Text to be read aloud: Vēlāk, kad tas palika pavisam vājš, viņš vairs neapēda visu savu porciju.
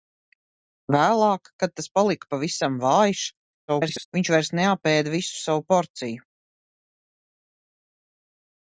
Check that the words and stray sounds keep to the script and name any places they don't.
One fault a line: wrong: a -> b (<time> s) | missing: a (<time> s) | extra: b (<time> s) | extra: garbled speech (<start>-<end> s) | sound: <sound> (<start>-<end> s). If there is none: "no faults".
extra: garbled speech (3.7-4.1 s)